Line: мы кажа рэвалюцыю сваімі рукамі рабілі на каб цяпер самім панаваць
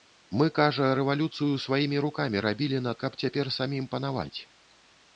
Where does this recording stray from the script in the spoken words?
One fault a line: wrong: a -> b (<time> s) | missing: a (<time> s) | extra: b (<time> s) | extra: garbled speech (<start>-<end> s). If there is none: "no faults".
no faults